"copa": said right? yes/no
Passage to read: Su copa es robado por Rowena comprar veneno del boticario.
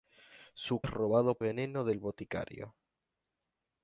no